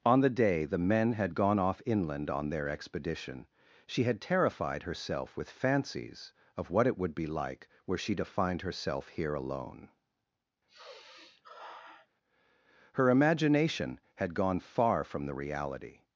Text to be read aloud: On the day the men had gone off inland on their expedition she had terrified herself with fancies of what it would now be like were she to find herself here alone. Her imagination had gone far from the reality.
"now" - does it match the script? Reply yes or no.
no